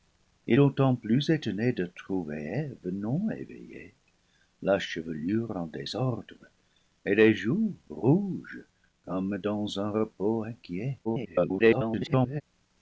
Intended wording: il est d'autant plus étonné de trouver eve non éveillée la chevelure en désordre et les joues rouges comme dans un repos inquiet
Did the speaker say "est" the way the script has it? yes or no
no